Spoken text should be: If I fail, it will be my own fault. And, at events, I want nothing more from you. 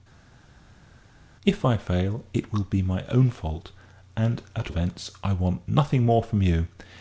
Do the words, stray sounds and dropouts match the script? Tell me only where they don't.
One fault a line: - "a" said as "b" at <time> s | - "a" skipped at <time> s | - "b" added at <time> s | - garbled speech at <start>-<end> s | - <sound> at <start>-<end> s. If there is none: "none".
none